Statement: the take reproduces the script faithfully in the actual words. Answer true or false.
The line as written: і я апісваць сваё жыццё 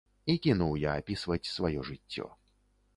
false